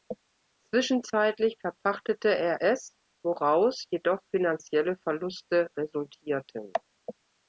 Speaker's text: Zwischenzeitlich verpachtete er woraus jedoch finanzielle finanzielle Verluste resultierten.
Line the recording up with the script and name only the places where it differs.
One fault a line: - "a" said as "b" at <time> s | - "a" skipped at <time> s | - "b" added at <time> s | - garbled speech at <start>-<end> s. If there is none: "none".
- "es" added at 2.6 s
- "finanzielle" skipped at 5.0 s